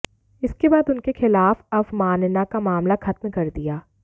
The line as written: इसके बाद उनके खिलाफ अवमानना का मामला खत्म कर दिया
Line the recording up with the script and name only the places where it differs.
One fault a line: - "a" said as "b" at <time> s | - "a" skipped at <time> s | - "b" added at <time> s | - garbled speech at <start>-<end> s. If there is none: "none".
none